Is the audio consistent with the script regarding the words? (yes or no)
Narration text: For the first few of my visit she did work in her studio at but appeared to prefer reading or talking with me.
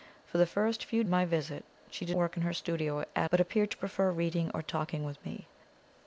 yes